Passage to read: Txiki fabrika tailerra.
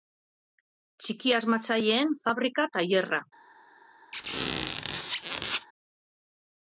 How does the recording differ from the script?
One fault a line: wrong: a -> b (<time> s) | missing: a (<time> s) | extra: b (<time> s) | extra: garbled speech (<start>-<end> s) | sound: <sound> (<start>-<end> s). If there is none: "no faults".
extra: asmatzaileen (1.4 s)
sound: squeak (4.1-5.7 s)